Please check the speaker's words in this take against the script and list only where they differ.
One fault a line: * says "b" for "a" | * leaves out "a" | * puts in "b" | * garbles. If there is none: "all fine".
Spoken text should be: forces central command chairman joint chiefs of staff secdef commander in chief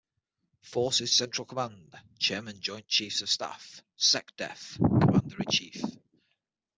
all fine